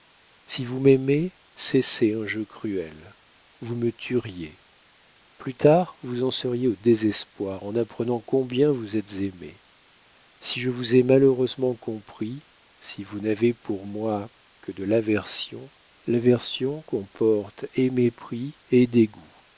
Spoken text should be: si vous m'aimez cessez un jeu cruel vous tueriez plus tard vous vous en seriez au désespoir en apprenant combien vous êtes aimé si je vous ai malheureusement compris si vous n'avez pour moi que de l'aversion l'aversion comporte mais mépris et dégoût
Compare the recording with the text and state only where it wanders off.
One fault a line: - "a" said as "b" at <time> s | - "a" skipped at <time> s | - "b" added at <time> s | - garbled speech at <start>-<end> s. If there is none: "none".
- "me" added at 3.8 s
- "vous" skipped at 6.2 s
- "mais" said as "et" at 17.7 s